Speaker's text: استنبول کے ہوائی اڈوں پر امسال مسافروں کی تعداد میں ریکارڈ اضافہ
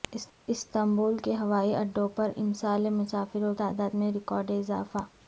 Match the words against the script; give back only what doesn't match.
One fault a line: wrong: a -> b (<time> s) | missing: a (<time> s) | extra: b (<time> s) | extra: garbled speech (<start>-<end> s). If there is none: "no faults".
missing: کی (3.5 s)